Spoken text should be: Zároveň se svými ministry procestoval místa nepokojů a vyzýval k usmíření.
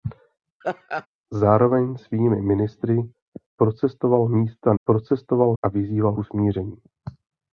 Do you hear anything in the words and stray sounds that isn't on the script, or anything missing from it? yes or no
yes